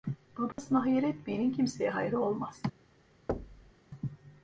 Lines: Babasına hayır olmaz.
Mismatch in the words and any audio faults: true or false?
true